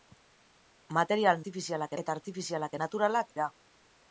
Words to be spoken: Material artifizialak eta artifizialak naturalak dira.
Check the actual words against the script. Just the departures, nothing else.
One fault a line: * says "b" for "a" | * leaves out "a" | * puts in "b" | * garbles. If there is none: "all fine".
all fine